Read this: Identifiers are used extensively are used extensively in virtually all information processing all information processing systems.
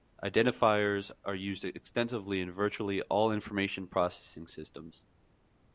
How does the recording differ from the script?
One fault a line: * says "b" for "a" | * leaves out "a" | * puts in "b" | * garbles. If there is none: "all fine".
* leaves out "are used extensively"
* leaves out "all information processing"